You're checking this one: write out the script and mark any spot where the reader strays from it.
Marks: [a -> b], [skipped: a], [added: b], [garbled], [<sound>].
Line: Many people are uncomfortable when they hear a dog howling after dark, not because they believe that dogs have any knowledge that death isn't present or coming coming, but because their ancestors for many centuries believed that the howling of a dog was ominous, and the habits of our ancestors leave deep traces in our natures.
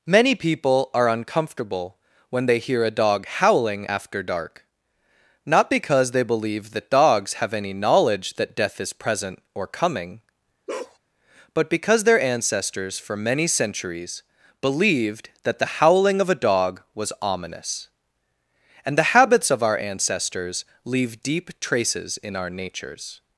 Many people are uncomfortable when they hear a dog howling after dark, not because they believe that dogs have any knowledge that death [isn't -> is] present or coming [skipped: coming,] [bark] but because their ancestors for many centuries believed that the howling of a dog was ominous, and the habits of our ancestors leave deep traces in our natures.